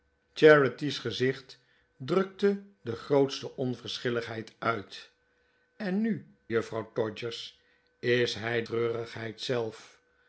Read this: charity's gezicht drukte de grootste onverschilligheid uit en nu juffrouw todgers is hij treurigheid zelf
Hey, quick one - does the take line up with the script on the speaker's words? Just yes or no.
yes